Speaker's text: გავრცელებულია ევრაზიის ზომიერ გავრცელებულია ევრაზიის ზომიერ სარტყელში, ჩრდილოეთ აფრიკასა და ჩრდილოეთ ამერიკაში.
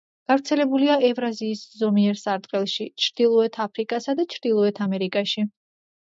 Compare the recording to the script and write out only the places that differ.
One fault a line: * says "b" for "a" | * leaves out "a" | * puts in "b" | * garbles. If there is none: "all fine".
* leaves out "გავრცელებულია ევრაზიის ზომიერ"